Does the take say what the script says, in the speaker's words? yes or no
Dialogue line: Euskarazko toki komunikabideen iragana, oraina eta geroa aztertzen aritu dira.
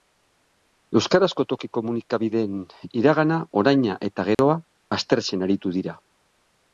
yes